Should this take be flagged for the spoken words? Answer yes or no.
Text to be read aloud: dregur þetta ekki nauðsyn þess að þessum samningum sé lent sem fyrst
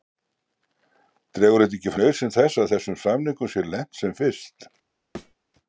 no